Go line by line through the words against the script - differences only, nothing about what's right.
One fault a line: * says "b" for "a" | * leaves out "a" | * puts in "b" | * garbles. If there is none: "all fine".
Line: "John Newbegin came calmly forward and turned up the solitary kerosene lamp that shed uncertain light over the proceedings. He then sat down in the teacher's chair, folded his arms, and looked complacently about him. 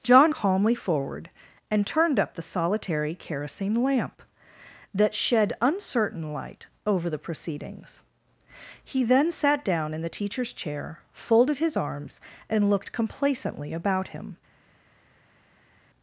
* leaves out "Newbegin came"